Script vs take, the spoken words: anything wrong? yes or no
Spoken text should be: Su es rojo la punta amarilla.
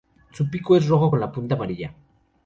yes